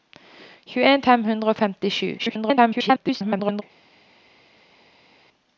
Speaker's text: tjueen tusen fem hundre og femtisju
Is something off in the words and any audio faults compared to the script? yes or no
yes